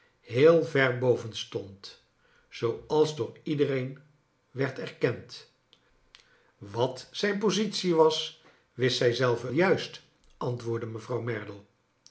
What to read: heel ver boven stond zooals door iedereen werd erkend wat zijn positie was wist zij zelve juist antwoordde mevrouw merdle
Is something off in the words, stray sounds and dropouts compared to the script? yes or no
no